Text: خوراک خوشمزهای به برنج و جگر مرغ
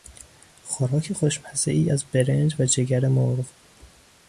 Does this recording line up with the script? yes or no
no